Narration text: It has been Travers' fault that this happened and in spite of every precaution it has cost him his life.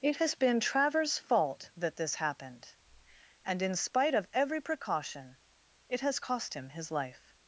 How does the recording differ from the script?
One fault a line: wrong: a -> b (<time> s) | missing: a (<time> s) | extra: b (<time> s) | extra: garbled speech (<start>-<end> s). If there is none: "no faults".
no faults